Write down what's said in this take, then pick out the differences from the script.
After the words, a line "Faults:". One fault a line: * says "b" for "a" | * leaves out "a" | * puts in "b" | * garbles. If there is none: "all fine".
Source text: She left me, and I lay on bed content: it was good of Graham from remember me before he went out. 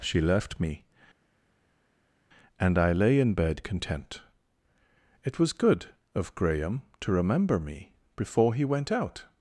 She left me, and I lay in bed content: it was good of Graham to remember me before he went out.
Faults:
* says "in" for "on"
* says "to" for "from"